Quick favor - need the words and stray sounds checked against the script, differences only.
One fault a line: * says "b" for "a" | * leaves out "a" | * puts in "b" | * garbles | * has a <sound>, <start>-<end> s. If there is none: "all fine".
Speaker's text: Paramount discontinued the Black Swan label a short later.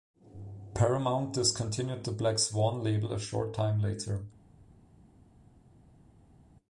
* puts in "time"